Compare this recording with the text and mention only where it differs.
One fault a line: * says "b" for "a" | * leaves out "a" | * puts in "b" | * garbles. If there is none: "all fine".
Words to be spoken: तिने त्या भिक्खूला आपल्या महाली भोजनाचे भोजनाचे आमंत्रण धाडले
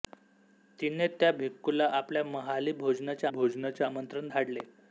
all fine